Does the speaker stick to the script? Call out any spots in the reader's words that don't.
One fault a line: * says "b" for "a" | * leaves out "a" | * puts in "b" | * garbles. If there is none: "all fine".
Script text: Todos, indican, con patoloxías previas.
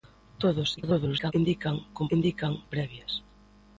* garbles
* says "indican" for "patoloxías"